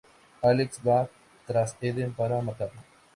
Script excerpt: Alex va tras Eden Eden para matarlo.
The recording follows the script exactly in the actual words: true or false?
false